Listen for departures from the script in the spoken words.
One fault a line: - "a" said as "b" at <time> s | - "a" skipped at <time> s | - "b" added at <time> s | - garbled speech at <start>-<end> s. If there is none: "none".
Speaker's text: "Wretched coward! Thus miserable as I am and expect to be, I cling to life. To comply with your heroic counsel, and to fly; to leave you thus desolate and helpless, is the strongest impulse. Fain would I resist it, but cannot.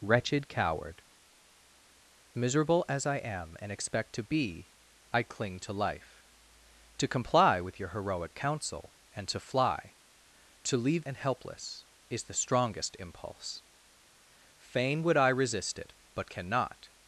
- "Thus" skipped at 1.0 s
- "you thus desolate" skipped at 11.0 s